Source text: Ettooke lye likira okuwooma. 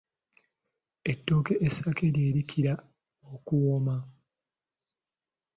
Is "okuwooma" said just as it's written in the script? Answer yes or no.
yes